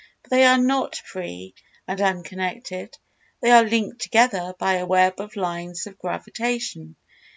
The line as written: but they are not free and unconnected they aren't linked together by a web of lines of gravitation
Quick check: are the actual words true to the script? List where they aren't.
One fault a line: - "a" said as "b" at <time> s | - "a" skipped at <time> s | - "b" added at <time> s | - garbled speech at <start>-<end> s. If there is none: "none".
- "aren't" said as "are" at 3.5 s